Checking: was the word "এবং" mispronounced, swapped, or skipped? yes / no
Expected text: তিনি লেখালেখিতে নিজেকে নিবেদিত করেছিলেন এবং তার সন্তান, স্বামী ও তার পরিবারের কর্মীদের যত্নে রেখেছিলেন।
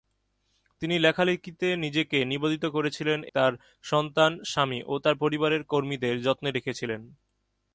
yes